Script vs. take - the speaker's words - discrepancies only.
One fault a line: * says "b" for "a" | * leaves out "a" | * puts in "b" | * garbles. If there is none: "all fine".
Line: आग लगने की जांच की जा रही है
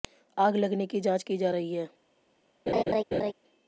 all fine